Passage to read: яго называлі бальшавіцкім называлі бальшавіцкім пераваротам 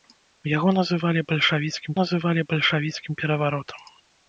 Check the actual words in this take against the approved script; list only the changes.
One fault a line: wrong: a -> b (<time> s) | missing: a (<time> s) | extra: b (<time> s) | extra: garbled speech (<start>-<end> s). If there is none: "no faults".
no faults